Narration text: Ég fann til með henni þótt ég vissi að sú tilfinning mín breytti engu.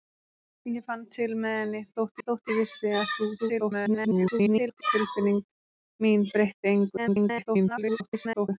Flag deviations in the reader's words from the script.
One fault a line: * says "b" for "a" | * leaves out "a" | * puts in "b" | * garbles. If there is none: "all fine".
* puts in "þótt"
* garbles
* garbles